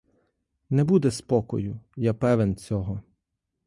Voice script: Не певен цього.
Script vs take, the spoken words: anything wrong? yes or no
yes